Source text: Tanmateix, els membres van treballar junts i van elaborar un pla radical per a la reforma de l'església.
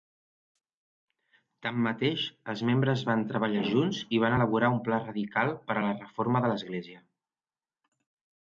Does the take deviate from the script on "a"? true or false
false